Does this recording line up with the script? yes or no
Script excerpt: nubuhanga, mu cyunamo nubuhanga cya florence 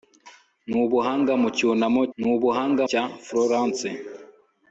yes